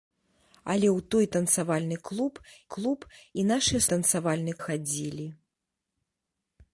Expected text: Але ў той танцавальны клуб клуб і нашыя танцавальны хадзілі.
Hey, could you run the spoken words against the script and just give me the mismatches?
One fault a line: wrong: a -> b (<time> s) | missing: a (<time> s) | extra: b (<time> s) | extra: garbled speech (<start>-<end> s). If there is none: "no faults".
no faults